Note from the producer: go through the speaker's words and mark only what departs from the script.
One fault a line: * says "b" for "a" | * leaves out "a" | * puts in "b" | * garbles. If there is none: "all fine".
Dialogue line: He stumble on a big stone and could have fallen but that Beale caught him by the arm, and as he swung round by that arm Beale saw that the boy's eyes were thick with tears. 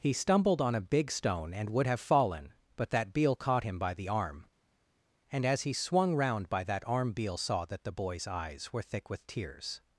* says "stumbled" for "stumble"
* says "would" for "could"